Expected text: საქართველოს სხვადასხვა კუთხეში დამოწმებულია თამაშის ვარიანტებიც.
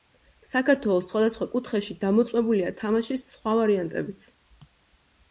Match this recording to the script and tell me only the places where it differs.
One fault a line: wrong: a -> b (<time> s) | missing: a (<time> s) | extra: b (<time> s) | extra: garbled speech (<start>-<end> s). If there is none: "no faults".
extra: სხვა (3.3 s)